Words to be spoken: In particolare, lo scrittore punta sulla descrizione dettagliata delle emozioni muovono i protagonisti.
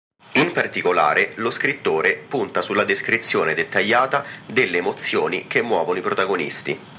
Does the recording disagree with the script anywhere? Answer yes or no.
yes